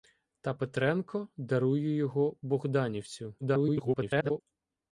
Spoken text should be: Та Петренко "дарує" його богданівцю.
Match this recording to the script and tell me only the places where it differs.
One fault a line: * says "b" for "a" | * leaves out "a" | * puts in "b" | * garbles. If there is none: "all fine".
* garbles